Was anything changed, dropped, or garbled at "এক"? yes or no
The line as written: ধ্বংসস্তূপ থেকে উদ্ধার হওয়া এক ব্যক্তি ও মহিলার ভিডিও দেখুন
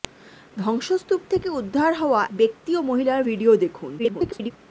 yes